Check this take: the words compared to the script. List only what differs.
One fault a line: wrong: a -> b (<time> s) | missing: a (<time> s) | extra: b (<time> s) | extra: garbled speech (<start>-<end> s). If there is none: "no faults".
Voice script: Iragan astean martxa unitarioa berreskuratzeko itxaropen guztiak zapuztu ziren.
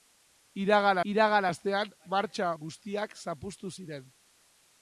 extra: iragan (1.1 s)
missing: unitarioa berreskuratzeko itxaropen (2.5 s)